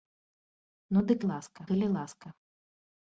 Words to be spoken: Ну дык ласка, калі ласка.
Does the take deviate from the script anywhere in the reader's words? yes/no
no